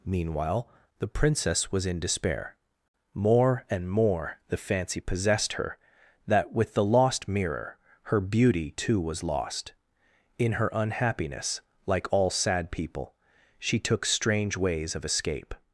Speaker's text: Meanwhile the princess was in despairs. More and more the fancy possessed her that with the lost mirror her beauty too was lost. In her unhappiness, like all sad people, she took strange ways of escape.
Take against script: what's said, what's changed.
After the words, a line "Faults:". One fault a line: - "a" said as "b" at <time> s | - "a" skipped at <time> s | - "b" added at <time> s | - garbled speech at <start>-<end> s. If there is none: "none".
Meanwhile the princess was in despair. More and more the fancy possessed her that with the lost mirror her beauty too was lost. In her unhappiness, like all sad people, she took strange ways of escape.
Faults:
- "despairs" said as "despair" at 2.0 s